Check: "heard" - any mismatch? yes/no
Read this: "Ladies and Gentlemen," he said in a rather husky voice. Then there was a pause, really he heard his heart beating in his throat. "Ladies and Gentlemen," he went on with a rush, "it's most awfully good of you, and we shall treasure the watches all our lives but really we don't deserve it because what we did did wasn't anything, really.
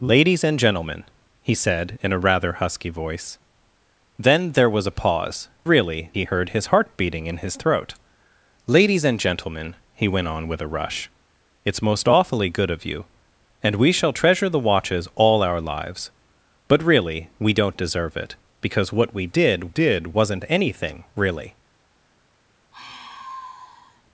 no